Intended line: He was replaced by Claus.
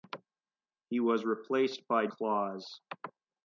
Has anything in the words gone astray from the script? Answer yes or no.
no